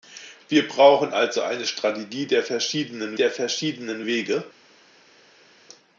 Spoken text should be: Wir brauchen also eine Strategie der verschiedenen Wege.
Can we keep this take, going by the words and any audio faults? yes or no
no